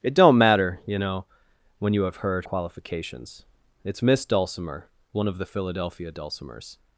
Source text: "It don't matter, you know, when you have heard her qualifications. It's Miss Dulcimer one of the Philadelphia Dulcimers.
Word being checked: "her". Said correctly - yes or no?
no